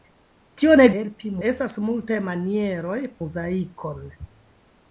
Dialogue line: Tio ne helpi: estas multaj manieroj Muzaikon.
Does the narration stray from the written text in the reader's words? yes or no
no